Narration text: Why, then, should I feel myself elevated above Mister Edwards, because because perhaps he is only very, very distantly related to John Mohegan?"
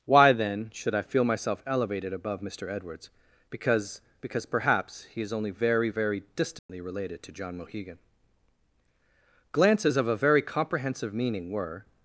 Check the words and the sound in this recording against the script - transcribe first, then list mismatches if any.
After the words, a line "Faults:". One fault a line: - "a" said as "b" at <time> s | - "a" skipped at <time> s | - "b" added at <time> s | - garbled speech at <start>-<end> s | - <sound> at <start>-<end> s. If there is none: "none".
Why, then, should I feel myself elevated above Mister Edwards, because because perhaps he is only very, very distantly related to John Mohegan?" Glances of a very comprehensive meaning were
Faults:
- dropout at 6.6-6.7 s
- "Glances of a very comprehensive meaning were" added at 9.5 s